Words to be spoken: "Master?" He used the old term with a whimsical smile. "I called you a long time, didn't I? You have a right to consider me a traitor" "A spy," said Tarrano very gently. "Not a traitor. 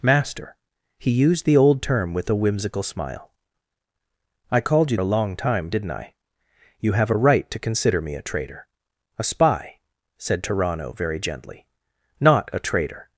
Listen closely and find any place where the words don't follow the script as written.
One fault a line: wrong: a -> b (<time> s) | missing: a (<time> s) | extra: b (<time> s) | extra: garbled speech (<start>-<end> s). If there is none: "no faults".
no faults